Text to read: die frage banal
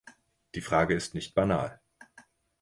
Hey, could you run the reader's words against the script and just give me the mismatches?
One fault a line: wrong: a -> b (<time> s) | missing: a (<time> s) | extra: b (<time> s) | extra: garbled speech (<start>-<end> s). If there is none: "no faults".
extra: ist nicht (0.9 s)